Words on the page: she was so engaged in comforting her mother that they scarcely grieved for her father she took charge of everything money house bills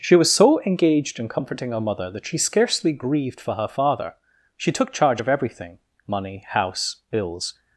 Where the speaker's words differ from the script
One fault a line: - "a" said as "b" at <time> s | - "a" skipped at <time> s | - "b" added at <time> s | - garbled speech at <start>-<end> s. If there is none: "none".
- "they" said as "she" at 2.2 s